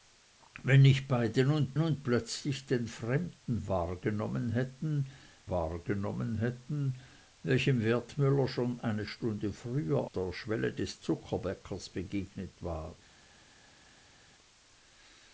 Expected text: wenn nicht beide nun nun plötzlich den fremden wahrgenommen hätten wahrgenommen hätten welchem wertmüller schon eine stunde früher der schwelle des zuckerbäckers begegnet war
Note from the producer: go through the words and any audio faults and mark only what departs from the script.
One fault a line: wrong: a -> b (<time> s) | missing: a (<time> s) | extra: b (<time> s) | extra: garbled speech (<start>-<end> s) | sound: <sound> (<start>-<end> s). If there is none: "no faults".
no faults